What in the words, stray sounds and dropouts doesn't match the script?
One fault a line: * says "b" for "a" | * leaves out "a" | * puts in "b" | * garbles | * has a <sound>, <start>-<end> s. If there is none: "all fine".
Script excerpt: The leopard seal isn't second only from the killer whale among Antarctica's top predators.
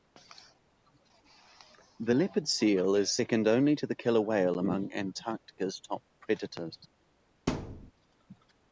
* says "is" for "isn't"
* says "to" for "from"
* has a thud, 7.5-7.9 s